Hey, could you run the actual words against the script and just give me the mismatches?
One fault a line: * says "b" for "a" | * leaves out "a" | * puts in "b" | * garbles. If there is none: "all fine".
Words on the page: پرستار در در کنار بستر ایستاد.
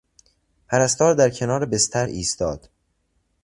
* leaves out "در"